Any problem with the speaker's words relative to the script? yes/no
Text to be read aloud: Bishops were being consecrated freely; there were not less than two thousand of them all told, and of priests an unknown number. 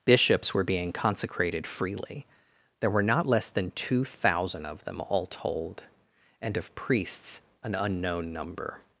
no